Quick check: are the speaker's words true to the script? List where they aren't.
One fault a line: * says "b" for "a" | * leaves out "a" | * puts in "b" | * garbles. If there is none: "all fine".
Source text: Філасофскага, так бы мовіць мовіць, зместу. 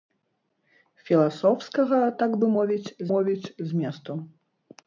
all fine